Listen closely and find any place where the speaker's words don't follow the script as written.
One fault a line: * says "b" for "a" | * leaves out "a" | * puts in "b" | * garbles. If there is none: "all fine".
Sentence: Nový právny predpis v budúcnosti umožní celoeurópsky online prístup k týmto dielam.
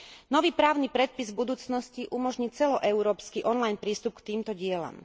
all fine